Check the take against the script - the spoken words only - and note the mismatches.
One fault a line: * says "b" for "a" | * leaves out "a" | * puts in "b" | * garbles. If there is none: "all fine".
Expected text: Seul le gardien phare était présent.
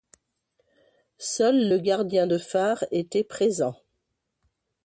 * puts in "de"